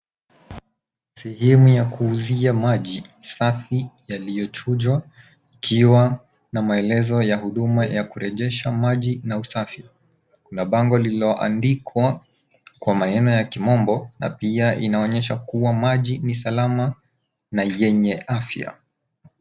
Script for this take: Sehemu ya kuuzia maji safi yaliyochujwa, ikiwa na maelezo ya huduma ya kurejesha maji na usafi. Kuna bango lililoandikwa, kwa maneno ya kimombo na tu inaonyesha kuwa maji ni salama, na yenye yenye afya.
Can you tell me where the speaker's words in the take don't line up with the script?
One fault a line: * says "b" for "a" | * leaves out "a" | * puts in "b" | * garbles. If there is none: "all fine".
* says "pia" for "tu"
* leaves out "yenye"